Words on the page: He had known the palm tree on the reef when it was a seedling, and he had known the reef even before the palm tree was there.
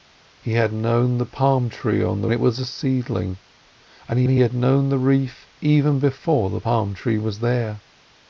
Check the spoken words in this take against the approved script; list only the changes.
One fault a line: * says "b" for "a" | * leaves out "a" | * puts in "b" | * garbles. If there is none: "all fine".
* leaves out "reef when"
* puts in "he"